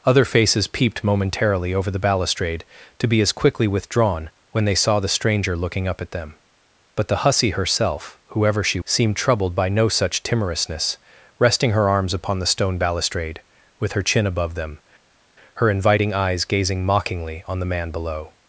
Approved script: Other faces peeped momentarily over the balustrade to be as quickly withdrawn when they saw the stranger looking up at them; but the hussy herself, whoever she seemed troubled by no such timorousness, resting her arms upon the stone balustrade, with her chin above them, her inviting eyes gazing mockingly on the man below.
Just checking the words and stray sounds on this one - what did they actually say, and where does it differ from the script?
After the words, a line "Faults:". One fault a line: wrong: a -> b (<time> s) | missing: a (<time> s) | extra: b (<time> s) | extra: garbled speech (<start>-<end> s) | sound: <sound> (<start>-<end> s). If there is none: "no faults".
Other faces peeped momentarily over the balustrade to be as quickly withdrawn when they saw the stranger looking up at them; but the hussy herself, whoever she seemed troubled by no such timorousness, resting her arms upon the stone balustrade, with her chin above them, her inviting eyes gazing mockingly on the man below.
Faults:
no faults